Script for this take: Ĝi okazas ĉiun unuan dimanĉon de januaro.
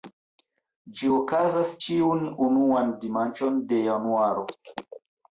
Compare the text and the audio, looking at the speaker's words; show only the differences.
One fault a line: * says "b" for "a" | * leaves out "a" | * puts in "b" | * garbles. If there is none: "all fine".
all fine